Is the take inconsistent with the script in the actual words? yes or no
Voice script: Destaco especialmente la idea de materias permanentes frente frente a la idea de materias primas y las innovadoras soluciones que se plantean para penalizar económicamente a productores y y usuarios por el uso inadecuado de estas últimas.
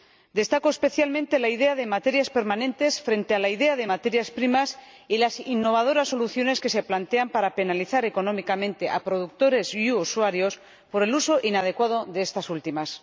yes